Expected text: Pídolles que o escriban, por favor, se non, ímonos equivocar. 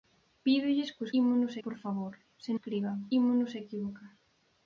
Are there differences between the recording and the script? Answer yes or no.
yes